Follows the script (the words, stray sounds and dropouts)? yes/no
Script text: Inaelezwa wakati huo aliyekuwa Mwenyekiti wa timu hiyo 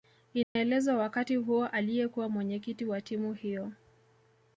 no